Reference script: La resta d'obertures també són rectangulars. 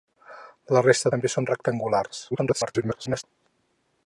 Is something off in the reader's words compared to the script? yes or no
yes